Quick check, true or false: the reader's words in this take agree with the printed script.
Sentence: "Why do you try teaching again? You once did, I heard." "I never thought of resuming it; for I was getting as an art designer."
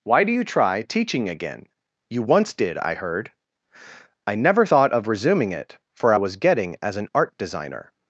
true